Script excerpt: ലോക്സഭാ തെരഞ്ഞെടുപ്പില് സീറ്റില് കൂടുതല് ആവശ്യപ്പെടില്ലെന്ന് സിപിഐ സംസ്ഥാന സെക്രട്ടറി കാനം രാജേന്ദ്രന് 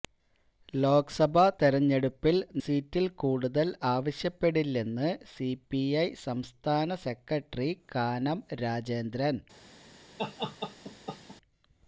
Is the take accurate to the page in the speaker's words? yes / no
yes